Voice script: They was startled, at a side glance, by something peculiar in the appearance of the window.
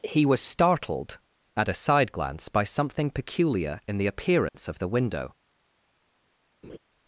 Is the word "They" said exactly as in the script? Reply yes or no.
no